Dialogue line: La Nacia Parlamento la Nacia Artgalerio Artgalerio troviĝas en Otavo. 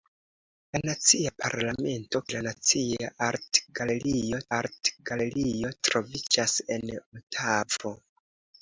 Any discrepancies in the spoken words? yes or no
no